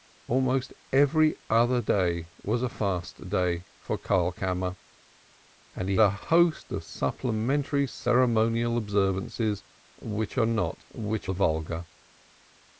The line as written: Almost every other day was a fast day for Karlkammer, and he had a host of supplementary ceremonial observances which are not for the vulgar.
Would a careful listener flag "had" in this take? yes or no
yes